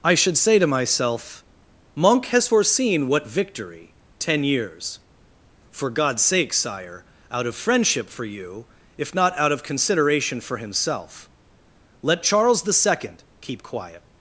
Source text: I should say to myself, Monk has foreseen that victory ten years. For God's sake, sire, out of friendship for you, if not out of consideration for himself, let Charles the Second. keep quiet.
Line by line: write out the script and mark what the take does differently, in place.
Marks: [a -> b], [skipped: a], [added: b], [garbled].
I should say to myself, Monk has foreseen [that -> what] victory ten years. For God's sake, sire, out of friendship for you, if not out of consideration for himself, let Charles the Second. keep quiet.